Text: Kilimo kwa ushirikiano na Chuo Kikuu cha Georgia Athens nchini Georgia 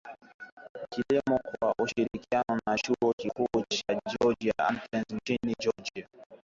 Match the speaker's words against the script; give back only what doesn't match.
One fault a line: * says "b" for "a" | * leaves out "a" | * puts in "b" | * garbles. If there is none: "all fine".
all fine